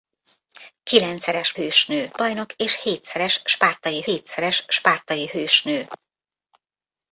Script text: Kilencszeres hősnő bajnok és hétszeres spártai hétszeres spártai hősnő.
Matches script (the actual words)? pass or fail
pass